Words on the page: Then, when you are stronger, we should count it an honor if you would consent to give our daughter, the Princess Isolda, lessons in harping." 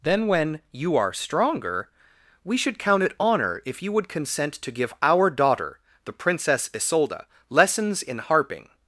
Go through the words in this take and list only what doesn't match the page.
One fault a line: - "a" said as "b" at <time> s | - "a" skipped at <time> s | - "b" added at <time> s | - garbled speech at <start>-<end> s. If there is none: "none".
- "an" skipped at 3.1 s